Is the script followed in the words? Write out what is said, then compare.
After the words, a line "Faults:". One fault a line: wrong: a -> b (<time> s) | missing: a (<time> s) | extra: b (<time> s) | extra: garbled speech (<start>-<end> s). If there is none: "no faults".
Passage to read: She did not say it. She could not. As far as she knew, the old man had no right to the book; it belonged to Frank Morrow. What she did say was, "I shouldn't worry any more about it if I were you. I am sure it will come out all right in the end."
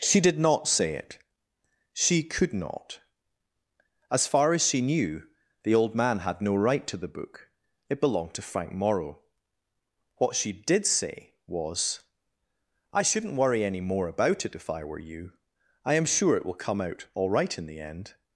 She did not say it. She could not. As far as she knew, the old man had no right to the book; it belonged to Frank Morrow. What she did say was, "I shouldn't worry any more about it if I were you. I am sure it will come out all right in the end."
Faults:
no faults